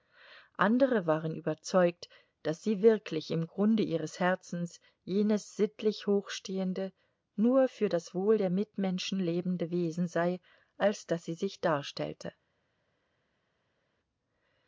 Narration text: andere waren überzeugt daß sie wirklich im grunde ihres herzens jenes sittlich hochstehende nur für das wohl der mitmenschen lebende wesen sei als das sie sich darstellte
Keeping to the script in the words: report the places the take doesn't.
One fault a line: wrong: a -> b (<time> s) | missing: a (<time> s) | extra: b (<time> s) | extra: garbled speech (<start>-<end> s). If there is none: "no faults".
no faults